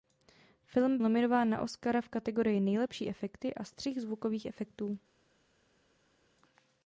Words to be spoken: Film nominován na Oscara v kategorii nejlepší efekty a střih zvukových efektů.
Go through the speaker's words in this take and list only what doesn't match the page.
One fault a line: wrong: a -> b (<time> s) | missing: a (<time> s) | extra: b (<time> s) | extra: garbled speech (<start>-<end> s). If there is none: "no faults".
no faults